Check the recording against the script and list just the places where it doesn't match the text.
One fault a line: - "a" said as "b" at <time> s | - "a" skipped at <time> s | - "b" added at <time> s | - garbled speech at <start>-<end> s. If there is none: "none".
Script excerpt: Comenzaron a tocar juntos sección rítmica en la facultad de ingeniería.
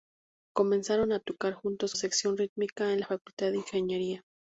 none